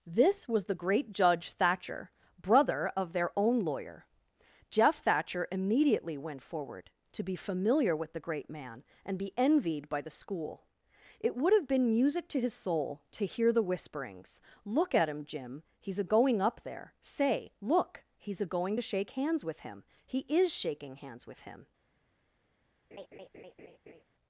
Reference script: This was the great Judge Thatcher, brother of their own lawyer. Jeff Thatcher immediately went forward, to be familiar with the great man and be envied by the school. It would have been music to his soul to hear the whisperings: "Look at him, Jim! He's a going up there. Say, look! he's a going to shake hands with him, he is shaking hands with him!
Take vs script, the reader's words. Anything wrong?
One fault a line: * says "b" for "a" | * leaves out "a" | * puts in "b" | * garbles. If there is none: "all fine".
all fine